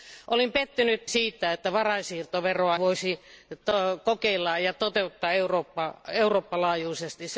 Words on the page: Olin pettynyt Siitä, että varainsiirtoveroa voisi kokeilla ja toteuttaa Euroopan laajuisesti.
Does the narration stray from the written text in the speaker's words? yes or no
no